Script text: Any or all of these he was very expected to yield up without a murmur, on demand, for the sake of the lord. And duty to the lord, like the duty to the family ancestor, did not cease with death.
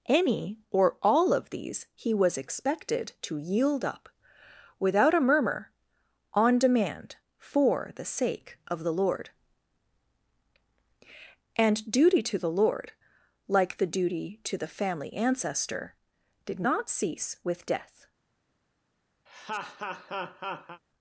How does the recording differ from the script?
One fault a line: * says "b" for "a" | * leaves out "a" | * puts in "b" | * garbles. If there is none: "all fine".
* leaves out "very"